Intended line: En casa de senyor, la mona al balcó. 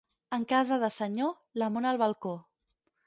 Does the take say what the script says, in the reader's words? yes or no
yes